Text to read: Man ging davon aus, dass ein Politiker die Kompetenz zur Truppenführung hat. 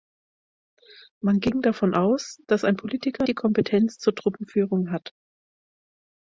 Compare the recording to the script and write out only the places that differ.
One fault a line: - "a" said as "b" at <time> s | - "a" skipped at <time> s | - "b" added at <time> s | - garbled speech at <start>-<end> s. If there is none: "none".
none